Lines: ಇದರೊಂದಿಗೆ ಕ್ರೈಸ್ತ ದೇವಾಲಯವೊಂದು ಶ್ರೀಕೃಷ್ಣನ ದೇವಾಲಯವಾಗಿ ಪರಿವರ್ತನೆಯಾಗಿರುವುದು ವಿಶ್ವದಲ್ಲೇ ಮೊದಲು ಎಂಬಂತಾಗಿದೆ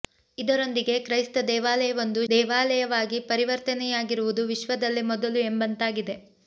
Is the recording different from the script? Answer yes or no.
yes